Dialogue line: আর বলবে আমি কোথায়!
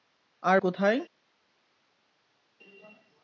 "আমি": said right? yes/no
no